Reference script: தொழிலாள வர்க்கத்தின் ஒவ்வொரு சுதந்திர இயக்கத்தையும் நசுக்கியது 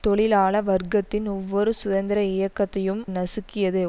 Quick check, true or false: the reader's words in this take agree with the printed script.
true